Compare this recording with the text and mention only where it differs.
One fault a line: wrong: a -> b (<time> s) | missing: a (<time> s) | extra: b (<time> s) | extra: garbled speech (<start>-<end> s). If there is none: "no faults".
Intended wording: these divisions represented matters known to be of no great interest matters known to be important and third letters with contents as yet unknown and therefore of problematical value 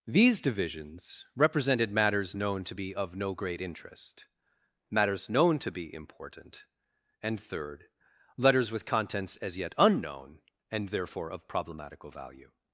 no faults